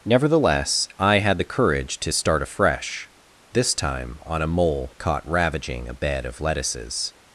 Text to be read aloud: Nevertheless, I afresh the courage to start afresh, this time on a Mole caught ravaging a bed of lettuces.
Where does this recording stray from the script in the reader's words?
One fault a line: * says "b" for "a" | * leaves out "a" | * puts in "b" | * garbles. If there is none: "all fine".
* says "had" for "afresh"